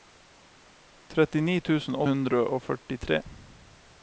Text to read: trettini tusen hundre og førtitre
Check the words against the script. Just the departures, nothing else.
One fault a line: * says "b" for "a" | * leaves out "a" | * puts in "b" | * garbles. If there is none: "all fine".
all fine